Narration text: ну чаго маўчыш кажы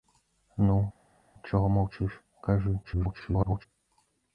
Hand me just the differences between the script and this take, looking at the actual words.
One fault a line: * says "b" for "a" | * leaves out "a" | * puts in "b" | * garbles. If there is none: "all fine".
* garbles